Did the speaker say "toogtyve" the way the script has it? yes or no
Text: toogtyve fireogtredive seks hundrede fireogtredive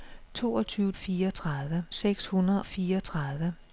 yes